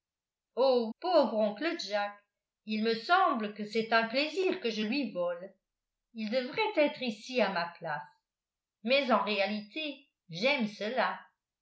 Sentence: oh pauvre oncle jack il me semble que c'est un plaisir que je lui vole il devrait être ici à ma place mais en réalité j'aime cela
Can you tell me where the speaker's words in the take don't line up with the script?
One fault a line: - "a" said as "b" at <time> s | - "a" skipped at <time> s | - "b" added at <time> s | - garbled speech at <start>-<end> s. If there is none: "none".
none